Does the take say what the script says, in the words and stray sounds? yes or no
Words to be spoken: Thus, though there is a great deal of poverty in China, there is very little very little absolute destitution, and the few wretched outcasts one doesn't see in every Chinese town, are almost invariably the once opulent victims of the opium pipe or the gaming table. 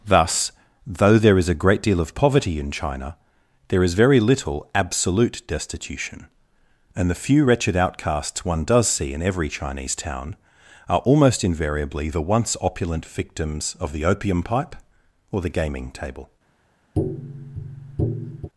no